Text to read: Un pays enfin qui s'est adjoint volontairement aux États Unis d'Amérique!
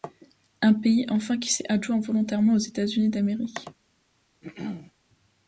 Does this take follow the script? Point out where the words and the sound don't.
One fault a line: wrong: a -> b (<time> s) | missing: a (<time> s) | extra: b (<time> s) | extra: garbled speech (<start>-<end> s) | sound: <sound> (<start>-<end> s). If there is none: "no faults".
sound: throat clearing (4.4-4.9 s)